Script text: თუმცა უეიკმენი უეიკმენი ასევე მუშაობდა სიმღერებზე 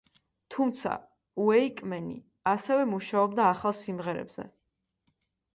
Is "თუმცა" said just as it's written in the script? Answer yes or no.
yes